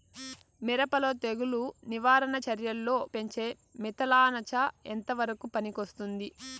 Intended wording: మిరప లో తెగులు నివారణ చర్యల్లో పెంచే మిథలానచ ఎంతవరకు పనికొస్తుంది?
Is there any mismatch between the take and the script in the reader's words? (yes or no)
no